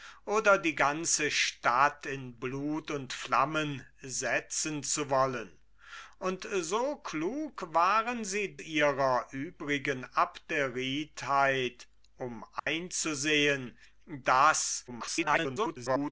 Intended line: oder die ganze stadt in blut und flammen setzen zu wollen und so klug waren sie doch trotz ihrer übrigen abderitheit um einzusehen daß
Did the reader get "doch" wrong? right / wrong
wrong